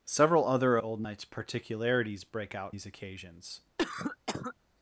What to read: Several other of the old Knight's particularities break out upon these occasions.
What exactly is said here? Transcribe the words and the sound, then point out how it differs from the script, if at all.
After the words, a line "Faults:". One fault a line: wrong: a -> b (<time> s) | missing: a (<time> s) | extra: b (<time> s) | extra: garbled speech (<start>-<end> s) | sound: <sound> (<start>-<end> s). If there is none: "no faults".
Several other old Knight's particularities break out these occasions.
Faults:
missing: of the (0.8 s)
missing: upon (2.8 s)
sound: cough (3.8-4.5 s)